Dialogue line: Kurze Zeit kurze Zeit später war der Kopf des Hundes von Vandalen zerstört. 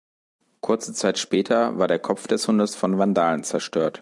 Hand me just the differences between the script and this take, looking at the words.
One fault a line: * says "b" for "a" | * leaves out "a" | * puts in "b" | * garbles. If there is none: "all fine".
* leaves out "kurze Zeit"